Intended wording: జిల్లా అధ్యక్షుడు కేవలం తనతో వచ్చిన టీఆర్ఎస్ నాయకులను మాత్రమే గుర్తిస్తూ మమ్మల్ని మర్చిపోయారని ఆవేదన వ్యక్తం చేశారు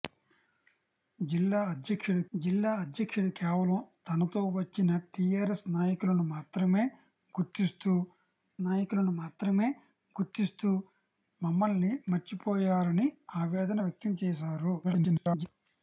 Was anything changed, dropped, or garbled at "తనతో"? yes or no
no